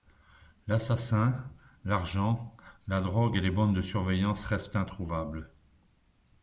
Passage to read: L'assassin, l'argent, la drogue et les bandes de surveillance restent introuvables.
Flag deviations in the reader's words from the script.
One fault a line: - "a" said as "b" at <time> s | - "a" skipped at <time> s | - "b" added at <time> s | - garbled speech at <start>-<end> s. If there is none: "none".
none